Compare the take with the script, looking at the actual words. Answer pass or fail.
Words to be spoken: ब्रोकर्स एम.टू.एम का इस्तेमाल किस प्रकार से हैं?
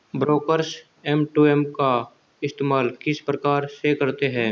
fail